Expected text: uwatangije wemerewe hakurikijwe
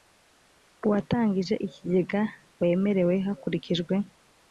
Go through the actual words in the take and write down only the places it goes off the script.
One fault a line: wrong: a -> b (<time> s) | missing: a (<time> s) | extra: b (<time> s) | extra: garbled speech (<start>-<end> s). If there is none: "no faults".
extra: ikigega (1.7 s)